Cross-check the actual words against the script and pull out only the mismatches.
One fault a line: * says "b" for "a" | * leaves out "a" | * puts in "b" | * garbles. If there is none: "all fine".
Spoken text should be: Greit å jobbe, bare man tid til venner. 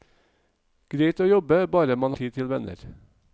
all fine